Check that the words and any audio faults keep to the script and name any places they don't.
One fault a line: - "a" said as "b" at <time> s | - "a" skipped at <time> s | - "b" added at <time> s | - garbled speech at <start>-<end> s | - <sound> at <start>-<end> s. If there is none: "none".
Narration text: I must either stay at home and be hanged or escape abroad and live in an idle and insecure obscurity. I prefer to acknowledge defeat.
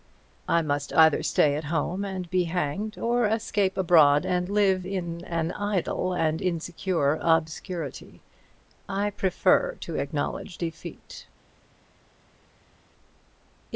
none